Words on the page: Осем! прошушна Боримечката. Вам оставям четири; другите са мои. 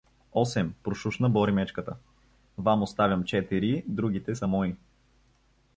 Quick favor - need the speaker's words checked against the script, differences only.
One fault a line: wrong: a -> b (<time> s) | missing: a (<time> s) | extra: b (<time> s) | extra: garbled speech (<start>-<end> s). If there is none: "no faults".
no faults